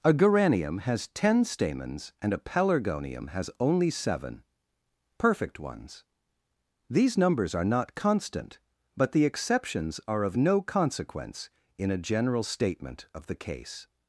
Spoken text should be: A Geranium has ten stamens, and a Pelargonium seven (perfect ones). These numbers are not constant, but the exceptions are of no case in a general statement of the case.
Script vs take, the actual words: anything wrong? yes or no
yes